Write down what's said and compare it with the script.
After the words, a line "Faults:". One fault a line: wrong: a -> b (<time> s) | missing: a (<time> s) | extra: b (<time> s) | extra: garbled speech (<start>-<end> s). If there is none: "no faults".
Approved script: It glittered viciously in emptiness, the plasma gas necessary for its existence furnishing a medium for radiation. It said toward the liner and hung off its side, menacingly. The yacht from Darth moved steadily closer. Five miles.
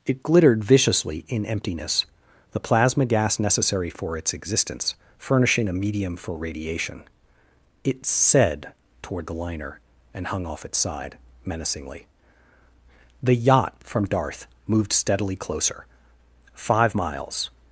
It glittered viciously in emptiness, the plasma gas necessary for its existence furnishing a medium for radiation. It said toward the liner and hung off its side, menacingly. The yacht from Darth moved steadily closer. Five miles.
Faults:
no faults